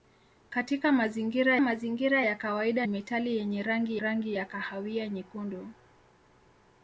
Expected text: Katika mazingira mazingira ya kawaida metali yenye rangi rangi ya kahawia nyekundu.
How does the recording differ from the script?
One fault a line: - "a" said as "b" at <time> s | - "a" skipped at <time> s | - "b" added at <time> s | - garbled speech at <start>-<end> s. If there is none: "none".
none